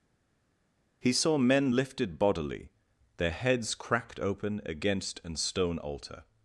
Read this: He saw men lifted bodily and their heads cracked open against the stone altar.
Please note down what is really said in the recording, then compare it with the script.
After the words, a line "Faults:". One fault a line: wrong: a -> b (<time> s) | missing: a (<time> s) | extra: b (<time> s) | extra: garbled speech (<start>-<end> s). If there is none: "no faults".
He saw men lifted bodily their heads cracked open against an stone altar.
Faults:
missing: and (2.7 s)
wrong: the -> an (5.2 s)